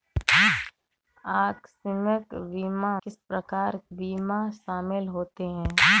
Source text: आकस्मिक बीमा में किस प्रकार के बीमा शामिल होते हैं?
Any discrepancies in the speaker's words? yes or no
yes